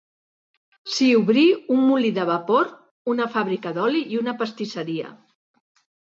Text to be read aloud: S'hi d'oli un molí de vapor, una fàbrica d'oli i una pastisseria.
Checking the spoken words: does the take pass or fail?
fail